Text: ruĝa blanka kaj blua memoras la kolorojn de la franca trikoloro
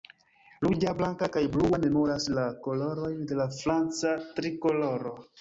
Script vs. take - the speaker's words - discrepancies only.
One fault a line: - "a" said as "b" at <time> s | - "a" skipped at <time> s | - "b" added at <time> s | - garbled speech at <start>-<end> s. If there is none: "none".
none